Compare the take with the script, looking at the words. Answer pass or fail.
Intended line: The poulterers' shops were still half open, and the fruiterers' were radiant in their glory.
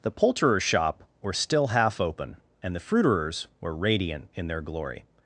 fail